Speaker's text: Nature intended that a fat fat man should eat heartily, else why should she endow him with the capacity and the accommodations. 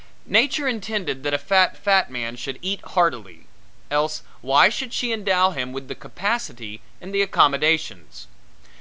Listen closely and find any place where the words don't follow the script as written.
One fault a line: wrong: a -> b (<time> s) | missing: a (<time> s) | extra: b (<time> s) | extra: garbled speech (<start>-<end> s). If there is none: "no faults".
no faults